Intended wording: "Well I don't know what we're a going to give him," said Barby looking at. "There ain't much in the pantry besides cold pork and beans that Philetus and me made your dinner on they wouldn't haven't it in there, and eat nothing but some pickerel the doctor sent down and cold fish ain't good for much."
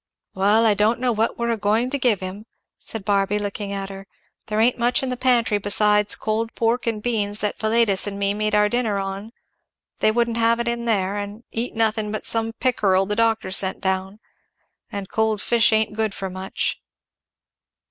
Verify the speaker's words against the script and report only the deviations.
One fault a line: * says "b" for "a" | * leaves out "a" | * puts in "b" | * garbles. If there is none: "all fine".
* puts in "her"
* says "our" for "your"
* says "have" for "haven't"